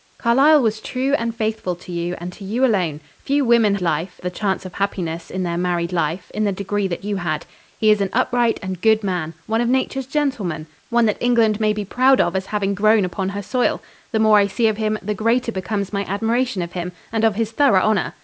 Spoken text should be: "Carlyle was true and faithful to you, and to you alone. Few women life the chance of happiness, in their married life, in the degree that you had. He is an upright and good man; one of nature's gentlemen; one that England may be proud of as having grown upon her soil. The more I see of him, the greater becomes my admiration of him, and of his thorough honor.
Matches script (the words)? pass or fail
pass